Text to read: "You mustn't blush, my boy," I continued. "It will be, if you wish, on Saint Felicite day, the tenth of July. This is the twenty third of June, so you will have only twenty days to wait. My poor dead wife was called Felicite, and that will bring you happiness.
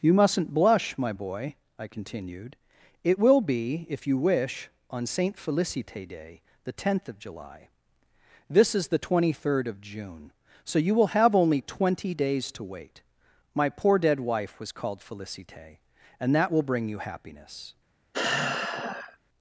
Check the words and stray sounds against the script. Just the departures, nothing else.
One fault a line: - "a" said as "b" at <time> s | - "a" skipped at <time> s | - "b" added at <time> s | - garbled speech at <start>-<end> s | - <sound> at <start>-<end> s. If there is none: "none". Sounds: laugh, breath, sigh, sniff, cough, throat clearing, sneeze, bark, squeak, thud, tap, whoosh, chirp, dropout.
- sigh at 18.1-19.2 s